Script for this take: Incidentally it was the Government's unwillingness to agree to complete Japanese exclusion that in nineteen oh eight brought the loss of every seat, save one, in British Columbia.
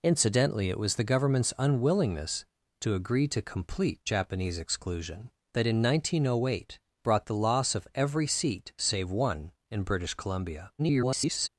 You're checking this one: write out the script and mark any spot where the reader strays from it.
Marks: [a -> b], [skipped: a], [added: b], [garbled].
Incidentally it was the Government's unwillingness to agree to complete Japanese exclusion that in nineteen oh eight brought the loss of every seat, save one, in British Columbia. [garbled]